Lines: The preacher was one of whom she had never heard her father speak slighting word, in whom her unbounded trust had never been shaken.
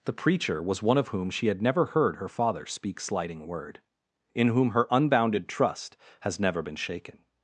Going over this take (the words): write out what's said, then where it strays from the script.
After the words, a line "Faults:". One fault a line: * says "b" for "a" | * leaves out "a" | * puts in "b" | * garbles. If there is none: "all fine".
The preacher was one of whom she had never heard her father speak slighting word, in whom her unbounded trust has never been shaken.
Faults:
* says "has" for "had"